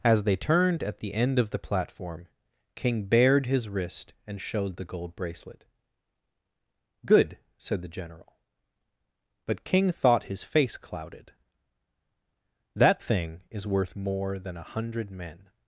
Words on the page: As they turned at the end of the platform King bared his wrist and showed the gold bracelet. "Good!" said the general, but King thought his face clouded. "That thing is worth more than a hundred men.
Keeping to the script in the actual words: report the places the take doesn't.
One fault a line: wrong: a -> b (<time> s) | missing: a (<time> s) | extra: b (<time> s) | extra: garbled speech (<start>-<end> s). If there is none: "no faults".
no faults